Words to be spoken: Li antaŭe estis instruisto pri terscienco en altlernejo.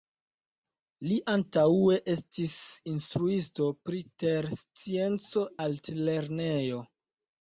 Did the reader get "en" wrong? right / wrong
wrong